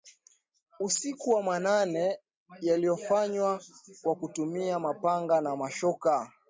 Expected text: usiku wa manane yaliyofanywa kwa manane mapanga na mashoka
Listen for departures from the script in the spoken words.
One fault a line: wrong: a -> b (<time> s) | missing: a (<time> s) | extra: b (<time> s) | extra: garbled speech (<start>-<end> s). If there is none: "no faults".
wrong: manane -> kutumia (4.2 s)